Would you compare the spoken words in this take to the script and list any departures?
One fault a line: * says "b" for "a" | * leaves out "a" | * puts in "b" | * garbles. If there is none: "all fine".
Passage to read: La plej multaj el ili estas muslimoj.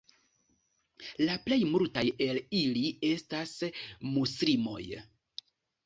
all fine